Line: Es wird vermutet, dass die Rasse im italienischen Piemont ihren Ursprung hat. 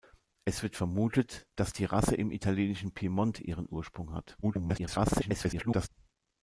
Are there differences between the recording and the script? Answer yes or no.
yes